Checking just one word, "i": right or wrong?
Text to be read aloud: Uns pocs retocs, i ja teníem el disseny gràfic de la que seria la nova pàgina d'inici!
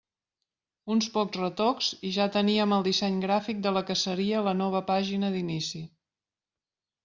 right